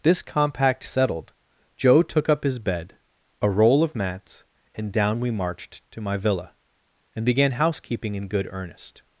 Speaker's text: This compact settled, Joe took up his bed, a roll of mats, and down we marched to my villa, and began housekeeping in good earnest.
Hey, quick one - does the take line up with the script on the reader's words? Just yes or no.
yes